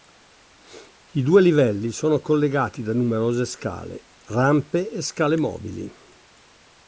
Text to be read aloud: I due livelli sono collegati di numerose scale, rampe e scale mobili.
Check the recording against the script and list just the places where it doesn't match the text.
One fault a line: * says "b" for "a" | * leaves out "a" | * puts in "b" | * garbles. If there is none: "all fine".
* says "da" for "di"